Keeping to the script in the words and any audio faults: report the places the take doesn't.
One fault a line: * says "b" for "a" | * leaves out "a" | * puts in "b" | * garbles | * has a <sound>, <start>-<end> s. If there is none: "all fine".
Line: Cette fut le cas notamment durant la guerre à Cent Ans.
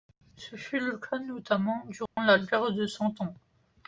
* says "Ce" for "Cette"
* has a dropout, 2.1-2.2 s
* says "de" for "à"